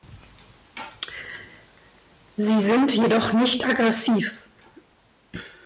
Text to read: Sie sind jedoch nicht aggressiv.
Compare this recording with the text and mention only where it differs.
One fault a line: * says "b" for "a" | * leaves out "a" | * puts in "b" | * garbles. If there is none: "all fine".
all fine